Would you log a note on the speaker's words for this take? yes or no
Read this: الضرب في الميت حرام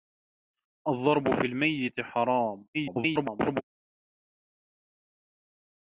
yes